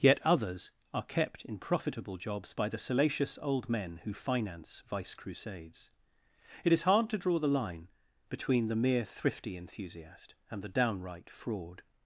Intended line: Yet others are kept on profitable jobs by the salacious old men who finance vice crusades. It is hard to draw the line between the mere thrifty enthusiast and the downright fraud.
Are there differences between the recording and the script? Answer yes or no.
yes